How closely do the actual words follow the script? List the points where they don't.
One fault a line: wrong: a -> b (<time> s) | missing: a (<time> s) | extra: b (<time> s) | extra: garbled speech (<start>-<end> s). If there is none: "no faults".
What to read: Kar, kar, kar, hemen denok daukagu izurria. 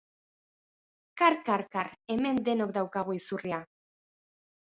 no faults